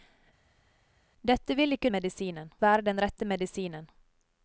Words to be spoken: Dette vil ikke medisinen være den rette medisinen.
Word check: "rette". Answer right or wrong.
right